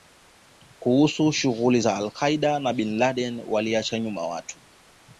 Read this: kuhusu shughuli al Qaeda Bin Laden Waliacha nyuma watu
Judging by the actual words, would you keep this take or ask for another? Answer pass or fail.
fail